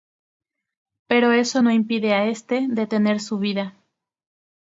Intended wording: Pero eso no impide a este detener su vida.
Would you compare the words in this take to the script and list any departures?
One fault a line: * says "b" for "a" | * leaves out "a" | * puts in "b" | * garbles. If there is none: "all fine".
all fine